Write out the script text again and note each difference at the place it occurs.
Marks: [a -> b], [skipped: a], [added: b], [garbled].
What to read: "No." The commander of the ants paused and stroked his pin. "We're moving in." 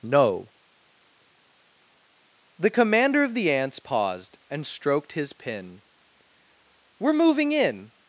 "No." The commander of the ants paused and stroked his pin. "We're moving in."